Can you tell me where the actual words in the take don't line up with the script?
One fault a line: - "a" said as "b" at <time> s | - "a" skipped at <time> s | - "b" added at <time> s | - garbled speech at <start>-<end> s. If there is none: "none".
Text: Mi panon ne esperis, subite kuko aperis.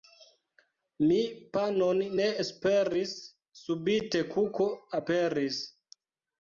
none